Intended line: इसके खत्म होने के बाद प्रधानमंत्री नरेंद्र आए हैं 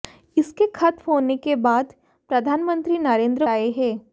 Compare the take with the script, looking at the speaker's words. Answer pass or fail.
pass